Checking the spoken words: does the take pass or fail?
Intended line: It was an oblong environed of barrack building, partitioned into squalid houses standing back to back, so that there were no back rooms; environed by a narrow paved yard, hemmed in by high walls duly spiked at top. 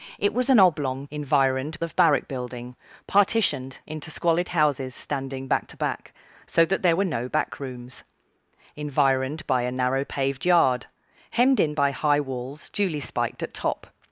pass